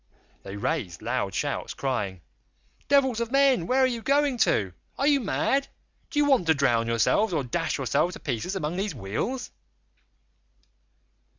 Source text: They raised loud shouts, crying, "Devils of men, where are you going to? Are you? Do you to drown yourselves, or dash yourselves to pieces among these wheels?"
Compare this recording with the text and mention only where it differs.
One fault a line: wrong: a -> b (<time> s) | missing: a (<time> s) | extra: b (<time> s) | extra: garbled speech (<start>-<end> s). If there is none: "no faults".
extra: mad (5.2 s)
extra: want (6.2 s)